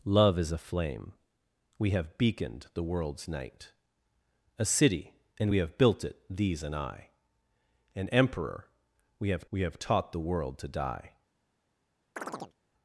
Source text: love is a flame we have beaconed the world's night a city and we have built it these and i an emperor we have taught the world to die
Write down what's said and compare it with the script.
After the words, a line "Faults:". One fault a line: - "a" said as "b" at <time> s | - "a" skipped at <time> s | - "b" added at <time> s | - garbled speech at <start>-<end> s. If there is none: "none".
love is a flame we have beaconed the world's night a city and we have built it these and i an emperor we have we have taught the world to die
Faults:
- "we have" added at 9.5 s